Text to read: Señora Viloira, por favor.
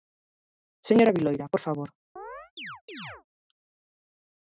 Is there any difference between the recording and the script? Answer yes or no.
no